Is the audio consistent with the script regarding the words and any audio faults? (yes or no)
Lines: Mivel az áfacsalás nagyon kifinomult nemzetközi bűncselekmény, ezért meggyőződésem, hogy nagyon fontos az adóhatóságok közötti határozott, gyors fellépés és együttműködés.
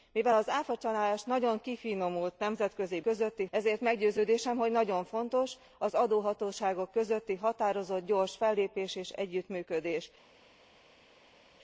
no